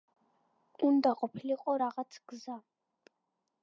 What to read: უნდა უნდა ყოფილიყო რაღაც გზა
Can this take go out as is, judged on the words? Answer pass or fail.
fail